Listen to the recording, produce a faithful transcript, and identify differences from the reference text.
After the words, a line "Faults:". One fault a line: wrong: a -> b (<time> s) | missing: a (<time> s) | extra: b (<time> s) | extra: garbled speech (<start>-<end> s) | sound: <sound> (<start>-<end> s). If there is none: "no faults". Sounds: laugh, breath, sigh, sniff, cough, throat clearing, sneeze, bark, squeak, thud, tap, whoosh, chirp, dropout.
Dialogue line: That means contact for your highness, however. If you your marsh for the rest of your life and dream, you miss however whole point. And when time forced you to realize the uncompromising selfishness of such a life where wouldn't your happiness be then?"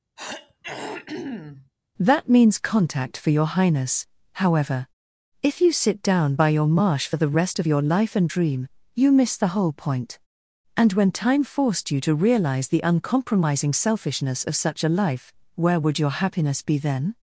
That means contact for your highness, however. If you sit down by your marsh for the rest of your life and dream, you miss the whole point. And when time forced you to realize the uncompromising selfishness of such a life where would your happiness be then?"
Faults:
sound: throat clearing (0.2-1.7 s)
extra: sit down by (5.7 s)
wrong: however -> the (9.4 s)
wrong: wouldn't -> would (15.8 s)